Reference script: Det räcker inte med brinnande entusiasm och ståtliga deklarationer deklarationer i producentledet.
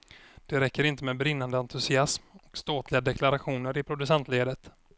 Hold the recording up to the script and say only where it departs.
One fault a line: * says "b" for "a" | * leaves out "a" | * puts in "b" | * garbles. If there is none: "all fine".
* leaves out "deklarationer"